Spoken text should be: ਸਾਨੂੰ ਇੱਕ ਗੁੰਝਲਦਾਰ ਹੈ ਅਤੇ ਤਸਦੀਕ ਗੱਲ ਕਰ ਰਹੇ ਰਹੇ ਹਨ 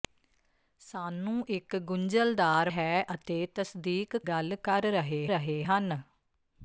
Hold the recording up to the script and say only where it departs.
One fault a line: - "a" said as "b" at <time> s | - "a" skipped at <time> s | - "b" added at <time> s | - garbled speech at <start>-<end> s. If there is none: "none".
none